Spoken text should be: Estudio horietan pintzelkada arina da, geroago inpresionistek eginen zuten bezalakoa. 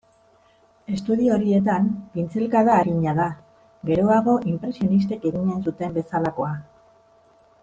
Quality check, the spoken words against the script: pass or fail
pass